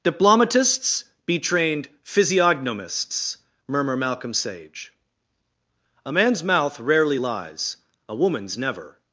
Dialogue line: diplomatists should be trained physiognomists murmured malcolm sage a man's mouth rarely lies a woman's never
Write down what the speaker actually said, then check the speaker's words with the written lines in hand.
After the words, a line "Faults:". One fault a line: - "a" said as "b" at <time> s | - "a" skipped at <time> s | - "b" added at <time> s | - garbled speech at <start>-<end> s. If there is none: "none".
diplomatists be trained physiognomists murmur malcolm sage a man's mouth rarely lies a woman's never
Faults:
- "should" skipped at 1.0 s
- "murmured" said as "murmur" at 3.7 s